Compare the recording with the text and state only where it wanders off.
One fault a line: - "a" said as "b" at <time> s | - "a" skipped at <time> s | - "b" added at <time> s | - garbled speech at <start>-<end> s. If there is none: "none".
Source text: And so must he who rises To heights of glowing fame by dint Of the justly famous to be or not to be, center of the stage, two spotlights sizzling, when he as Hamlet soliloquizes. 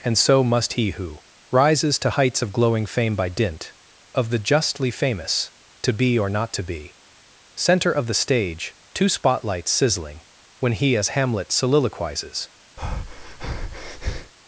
none